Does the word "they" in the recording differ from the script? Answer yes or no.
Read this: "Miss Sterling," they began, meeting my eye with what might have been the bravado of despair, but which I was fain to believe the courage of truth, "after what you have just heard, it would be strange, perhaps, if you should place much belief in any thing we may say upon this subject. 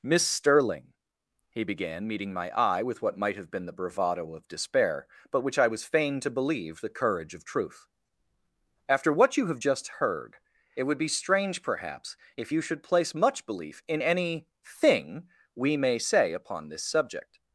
yes